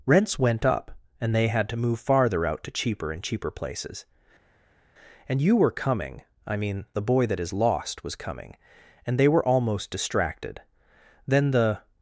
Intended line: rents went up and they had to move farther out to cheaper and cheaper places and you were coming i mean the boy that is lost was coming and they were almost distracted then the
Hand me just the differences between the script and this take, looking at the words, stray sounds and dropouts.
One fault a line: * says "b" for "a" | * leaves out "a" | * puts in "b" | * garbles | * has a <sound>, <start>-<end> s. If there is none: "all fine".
all fine